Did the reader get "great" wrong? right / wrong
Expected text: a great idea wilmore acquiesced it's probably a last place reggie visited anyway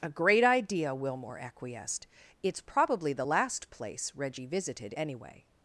right